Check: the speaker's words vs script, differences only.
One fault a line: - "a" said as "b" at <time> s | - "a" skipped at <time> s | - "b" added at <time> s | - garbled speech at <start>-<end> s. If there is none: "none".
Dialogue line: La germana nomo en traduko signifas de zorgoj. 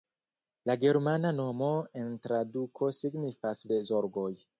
none